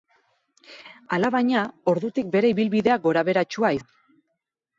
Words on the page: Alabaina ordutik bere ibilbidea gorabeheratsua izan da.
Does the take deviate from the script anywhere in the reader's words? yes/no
yes